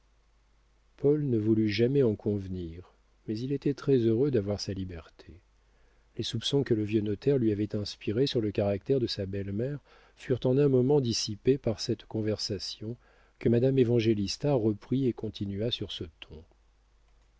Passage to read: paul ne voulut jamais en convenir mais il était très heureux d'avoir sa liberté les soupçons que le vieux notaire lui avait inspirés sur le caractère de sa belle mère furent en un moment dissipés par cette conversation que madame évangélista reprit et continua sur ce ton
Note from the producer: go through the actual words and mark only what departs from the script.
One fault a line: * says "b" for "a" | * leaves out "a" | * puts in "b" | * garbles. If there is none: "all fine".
all fine